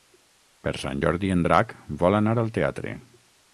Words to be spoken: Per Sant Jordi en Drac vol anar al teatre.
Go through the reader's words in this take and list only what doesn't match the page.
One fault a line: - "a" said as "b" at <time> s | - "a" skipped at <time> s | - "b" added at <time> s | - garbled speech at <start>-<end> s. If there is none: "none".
none